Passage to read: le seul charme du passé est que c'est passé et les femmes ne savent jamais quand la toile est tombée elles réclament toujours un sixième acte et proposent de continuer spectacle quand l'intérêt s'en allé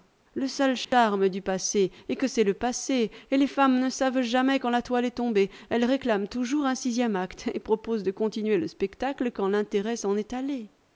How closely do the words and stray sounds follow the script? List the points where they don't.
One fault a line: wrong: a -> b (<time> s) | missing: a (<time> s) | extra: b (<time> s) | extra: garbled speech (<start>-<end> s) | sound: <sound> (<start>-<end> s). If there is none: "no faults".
sound: dropout (0.8-0.9 s)
extra: le (2.4 s)
extra: le (8.6 s)
extra: est (10.2 s)